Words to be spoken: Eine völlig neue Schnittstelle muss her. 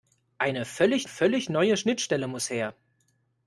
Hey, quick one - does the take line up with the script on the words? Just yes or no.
no